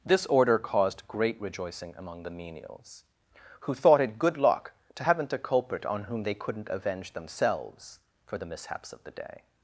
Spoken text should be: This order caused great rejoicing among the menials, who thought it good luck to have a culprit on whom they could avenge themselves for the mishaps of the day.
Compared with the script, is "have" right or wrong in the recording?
wrong